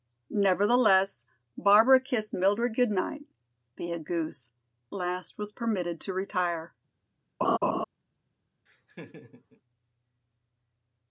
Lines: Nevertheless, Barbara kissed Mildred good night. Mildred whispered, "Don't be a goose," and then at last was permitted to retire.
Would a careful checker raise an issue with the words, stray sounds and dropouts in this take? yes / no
yes